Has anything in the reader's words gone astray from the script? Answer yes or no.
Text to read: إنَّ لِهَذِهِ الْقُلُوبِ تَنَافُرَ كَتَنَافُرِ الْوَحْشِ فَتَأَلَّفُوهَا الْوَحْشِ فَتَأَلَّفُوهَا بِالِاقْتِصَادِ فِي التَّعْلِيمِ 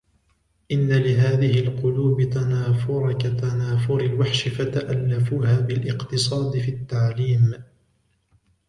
yes